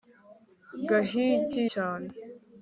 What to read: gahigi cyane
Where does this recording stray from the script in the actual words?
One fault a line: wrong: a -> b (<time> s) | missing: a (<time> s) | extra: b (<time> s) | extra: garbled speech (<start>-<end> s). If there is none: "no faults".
no faults